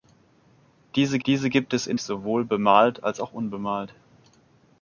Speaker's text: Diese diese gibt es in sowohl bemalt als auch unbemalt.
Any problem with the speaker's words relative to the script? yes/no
no